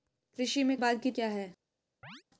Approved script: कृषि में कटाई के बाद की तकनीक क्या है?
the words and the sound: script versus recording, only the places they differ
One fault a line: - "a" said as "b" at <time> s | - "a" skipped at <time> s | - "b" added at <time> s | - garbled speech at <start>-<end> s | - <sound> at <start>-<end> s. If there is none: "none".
- "कटाई के" skipped at 0.8 s
- "तकनीक" skipped at 1.1 s
- chirp at 2.0-2.2 s